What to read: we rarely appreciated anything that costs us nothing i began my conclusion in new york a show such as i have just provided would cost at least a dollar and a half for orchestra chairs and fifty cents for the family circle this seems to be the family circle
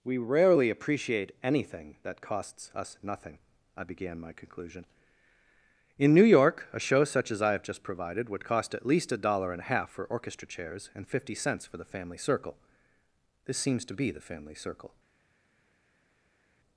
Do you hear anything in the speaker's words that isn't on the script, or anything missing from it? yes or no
yes